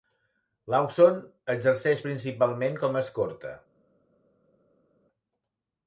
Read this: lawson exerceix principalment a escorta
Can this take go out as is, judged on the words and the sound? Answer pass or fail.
fail